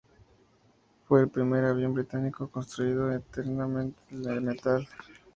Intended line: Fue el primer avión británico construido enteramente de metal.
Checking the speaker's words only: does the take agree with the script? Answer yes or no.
yes